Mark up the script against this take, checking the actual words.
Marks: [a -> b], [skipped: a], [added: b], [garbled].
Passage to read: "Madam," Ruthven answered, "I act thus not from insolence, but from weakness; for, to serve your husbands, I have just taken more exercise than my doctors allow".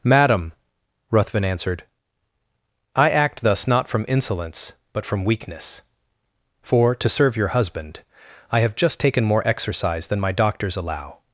"Madam," Ruthven answered, "I act thus not from insolence, but from weakness; for, to serve your [husbands, -> husband] I have just taken more exercise than my doctors allow".